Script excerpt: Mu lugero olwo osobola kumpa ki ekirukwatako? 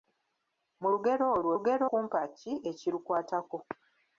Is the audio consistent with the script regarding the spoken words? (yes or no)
no